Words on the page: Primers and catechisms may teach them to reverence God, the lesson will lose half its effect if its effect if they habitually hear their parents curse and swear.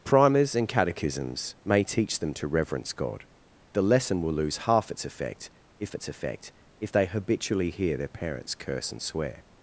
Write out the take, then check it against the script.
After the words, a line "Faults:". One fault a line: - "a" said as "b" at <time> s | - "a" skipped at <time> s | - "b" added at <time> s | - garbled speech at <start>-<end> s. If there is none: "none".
Primers and catechisms may teach them to reverence God, the lesson will lose half its effect if its effect if they habitually hear their parents curse and swear.
Faults:
none